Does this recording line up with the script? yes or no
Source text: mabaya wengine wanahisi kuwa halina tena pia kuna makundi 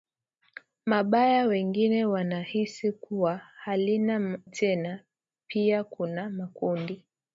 yes